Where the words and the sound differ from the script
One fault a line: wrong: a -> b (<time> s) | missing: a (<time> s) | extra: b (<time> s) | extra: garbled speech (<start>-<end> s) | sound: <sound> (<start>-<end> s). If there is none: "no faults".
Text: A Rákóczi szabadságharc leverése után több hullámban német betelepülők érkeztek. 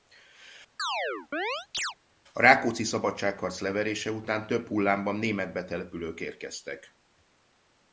sound: chirp (0.8-1.9 s)